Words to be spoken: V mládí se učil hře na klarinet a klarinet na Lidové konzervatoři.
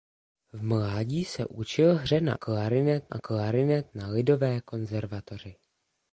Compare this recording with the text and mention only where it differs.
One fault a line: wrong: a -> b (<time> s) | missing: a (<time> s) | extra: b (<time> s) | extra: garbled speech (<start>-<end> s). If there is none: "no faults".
no faults